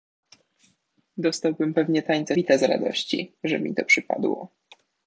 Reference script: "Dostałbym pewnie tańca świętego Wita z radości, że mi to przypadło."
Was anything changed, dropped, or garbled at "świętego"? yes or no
yes